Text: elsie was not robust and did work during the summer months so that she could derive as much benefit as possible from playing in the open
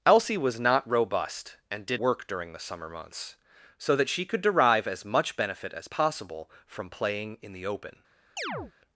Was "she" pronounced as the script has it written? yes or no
yes